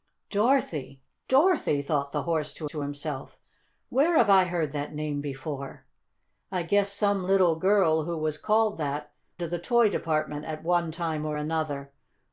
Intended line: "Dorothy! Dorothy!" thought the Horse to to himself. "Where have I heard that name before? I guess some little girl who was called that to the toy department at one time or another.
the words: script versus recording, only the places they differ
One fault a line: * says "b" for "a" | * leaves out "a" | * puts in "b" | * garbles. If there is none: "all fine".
all fine